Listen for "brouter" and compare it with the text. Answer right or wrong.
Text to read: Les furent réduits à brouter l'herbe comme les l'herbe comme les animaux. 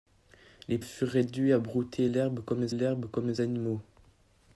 right